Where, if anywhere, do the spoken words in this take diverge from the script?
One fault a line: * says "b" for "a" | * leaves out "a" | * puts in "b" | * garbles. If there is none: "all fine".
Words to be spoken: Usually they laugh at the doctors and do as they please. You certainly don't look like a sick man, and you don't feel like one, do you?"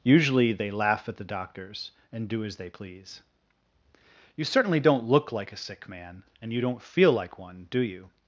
all fine